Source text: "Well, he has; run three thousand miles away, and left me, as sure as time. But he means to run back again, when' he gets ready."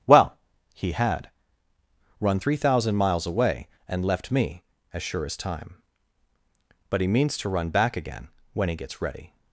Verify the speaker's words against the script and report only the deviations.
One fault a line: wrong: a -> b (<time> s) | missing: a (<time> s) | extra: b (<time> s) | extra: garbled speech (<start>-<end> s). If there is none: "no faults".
wrong: has -> had (0.9 s)